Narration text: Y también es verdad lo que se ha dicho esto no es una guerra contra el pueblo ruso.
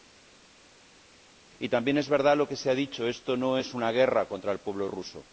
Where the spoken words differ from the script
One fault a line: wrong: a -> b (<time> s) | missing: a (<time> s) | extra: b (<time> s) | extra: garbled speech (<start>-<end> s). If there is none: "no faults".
no faults